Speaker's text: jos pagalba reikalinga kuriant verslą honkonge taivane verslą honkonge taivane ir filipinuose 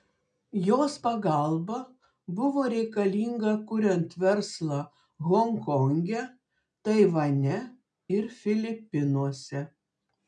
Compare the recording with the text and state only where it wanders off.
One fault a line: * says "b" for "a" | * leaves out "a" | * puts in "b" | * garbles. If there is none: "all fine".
* puts in "buvo"
* leaves out "verslą honkonge taivane"